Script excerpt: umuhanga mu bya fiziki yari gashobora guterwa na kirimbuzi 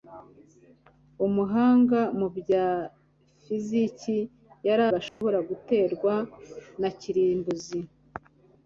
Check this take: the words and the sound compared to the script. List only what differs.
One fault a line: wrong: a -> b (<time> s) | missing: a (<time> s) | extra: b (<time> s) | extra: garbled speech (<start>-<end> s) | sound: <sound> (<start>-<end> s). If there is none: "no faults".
sound: dropout (5.1-5.2 s)